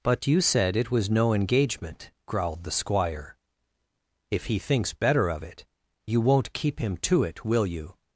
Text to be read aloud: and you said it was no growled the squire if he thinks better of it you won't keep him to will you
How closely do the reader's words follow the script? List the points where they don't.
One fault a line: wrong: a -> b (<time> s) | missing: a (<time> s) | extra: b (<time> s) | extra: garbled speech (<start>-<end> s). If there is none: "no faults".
wrong: and -> but (0.0 s)
extra: engagement (1.3 s)
extra: it (7.2 s)